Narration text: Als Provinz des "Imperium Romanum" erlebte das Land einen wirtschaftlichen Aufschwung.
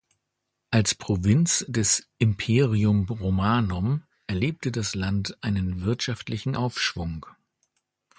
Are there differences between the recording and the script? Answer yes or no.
no